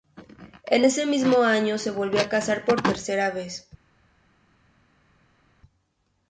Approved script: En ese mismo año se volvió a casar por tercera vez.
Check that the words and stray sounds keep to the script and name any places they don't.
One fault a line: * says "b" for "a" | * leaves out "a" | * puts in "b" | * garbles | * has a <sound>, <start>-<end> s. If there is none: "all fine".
all fine